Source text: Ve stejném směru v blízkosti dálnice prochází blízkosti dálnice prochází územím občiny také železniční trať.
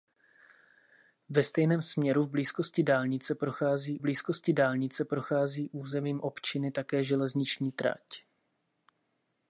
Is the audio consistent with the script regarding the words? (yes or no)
yes